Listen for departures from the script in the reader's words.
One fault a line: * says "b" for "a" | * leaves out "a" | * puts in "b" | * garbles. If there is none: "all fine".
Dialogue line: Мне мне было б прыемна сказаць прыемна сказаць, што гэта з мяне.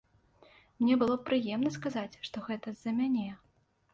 * leaves out "мне"
* leaves out "прыемна сказаць"
* puts in "за"